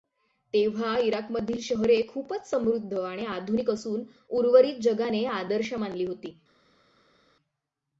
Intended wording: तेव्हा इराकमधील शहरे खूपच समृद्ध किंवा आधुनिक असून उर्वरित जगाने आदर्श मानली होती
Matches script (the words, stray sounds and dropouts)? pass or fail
fail